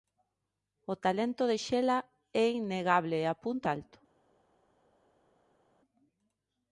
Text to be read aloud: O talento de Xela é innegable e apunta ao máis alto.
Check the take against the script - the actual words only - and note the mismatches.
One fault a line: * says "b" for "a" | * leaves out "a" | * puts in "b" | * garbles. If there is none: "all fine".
* leaves out "ao máis"